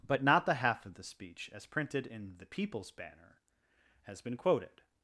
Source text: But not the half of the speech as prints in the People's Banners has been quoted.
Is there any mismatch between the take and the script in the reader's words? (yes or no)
yes